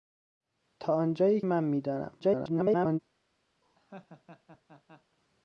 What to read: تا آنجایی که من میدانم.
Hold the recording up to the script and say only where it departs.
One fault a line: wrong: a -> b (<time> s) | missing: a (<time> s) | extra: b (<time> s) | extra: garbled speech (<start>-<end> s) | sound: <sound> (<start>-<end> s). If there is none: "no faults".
missing: که (1.4 s)
extra: garbled speech (2.2-3.0 s)
sound: laugh (3.6-5.2 s)